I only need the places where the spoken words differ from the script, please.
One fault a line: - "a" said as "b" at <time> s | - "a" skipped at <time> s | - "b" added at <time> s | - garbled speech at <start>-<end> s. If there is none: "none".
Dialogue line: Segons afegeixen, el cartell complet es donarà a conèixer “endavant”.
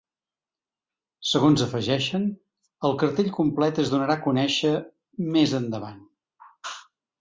- "més" added at 5.4 s